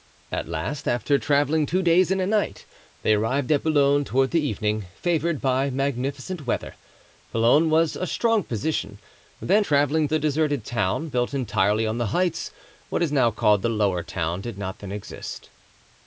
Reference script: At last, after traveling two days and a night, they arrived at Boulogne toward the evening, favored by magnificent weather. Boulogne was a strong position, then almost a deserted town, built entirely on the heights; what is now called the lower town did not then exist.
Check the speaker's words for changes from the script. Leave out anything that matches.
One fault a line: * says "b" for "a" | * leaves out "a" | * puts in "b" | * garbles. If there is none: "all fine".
* says "traveling" for "almost"